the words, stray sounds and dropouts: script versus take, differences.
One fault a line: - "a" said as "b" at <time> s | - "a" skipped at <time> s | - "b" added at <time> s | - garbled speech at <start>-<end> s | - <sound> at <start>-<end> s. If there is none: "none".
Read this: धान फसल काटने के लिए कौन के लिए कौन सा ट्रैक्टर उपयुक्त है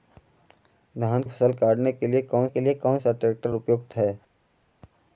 none